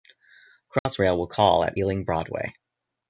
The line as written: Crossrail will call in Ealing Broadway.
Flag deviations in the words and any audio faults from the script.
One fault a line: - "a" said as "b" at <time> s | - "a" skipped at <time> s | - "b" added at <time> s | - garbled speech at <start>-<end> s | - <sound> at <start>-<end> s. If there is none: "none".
- dropout at 0.8-0.9 s
- "in" said as "at" at 1.6 s